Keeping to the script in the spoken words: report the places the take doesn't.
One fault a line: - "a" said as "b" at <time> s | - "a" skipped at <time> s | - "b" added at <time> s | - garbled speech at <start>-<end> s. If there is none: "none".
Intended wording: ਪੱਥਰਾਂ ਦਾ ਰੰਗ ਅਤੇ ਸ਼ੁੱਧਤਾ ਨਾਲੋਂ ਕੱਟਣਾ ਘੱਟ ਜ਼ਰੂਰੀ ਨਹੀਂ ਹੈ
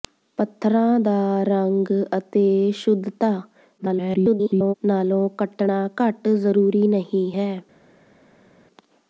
- garbled speech at 3.8-4.7 s